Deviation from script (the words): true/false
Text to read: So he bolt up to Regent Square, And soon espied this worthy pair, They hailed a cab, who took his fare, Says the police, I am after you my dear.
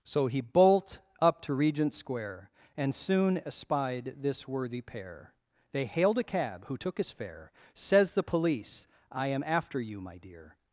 false